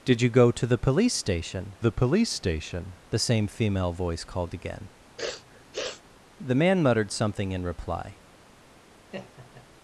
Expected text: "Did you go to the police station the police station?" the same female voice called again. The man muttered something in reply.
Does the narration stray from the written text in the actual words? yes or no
no